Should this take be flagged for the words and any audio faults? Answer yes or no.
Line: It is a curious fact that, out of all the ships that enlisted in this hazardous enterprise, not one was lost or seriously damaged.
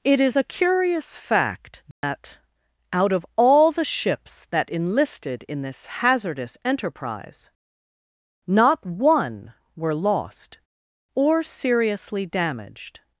yes